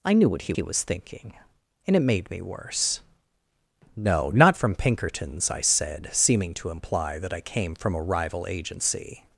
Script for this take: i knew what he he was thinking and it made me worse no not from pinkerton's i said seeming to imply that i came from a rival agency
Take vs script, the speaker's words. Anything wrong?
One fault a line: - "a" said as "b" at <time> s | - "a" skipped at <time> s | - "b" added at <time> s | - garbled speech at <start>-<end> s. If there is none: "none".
none